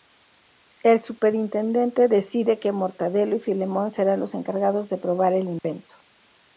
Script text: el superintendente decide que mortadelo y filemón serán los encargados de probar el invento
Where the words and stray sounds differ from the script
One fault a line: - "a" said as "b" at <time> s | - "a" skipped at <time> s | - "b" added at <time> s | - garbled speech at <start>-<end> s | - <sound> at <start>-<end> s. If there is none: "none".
- dropout at 5.6-5.6 s